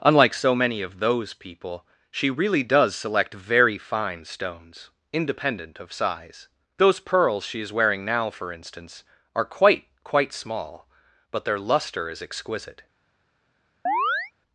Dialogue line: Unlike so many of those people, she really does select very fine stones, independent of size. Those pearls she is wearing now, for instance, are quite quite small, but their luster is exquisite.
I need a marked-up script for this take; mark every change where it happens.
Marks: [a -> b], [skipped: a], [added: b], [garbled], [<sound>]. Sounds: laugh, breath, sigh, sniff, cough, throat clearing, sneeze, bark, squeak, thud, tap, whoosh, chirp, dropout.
Unlike so many of those people, she really does select very fine stones, independent of size. Those pearls she is wearing now, for instance, are quite quite small, but their luster is exquisite. [chirp]